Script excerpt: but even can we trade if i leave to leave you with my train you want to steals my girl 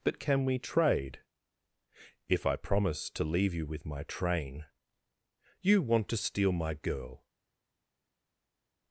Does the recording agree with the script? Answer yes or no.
no